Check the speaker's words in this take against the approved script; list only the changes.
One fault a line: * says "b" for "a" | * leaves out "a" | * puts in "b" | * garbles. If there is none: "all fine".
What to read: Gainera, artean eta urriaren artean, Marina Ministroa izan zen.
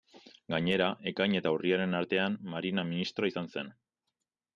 * says "ekain" for "artean"